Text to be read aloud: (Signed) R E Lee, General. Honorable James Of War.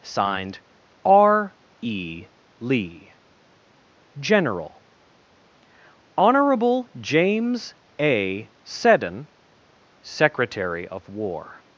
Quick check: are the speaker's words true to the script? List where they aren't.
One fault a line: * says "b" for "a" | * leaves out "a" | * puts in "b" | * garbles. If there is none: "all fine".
* puts in "A Seddon Secretary"